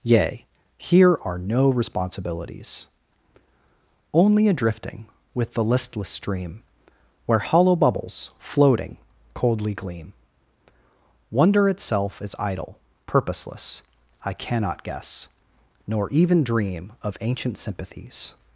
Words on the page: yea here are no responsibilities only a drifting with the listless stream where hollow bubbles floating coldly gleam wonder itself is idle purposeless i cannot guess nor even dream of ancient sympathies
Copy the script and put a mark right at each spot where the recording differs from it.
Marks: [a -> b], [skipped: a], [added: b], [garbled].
yea here are no responsibilities only a drifting with the listless stream where hollow bubbles floating coldly gleam wonder itself is idle purposeless i cannot guess nor even dream of ancient sympathies